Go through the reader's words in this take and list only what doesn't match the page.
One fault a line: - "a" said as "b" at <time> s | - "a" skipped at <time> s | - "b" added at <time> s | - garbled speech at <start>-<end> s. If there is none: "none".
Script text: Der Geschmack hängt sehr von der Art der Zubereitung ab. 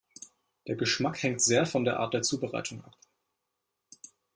none